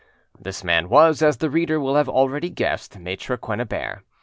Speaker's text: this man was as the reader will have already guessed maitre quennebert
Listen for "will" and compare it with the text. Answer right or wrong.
right